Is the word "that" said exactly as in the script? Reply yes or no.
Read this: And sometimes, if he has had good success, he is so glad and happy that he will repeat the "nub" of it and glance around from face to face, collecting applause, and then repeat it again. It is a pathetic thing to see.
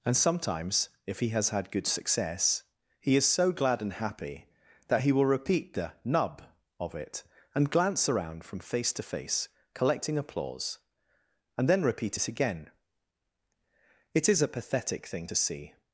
yes